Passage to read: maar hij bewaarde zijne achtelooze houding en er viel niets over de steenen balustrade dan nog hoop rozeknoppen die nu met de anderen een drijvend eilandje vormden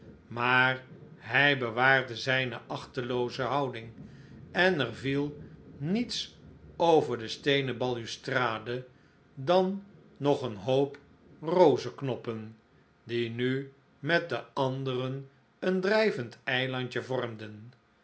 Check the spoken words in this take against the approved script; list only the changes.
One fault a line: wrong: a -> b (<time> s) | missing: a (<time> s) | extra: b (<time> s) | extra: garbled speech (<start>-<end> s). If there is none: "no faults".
extra: een (10.4 s)